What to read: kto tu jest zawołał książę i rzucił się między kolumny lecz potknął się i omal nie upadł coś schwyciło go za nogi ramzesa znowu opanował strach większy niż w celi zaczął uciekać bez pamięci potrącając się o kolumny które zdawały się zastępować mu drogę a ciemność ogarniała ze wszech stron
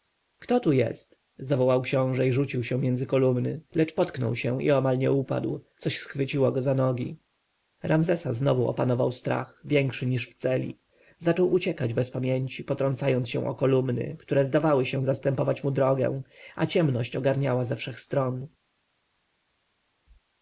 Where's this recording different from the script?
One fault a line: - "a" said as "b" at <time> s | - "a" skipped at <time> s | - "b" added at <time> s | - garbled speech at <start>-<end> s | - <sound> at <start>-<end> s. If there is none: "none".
none